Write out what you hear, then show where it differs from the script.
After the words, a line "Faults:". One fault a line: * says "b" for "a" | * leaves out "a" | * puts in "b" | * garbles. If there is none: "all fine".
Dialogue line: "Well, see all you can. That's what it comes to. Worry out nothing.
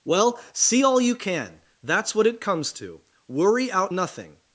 "Well, see all you can. That's what it comes to. Worry out nothing.
Faults:
all fine